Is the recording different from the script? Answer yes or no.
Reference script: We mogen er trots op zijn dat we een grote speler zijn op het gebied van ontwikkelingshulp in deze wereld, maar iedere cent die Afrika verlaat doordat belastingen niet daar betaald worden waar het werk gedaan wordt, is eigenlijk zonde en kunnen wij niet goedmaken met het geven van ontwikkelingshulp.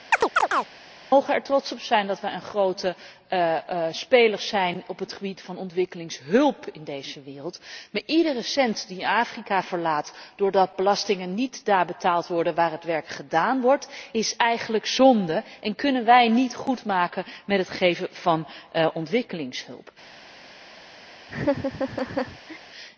no